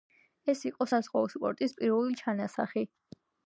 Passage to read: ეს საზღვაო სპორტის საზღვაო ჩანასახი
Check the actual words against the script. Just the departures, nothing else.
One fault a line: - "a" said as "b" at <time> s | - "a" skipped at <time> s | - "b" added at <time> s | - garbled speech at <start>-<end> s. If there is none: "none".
- "იყო" added at 0.7 s
- "საზღვაო" said as "პირველი" at 1.8 s